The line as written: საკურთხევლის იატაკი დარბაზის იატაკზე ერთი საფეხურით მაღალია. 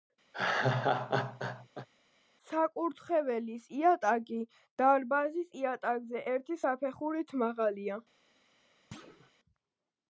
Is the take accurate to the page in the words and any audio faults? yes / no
no